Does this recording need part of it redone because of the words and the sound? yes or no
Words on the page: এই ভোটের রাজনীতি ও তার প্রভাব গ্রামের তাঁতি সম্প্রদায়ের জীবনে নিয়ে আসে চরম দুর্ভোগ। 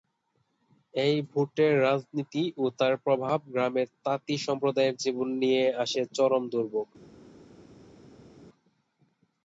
no